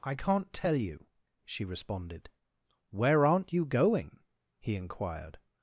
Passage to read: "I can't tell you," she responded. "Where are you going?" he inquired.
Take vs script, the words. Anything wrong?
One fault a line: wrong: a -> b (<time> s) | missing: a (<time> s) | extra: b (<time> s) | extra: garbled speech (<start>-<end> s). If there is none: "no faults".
wrong: are -> aren't (3.3 s)